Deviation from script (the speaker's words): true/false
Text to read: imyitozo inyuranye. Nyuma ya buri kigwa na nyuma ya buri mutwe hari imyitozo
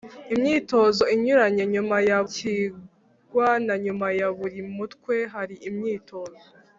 true